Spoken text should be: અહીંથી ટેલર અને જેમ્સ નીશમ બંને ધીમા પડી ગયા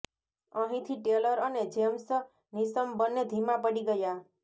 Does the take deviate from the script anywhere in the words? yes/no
no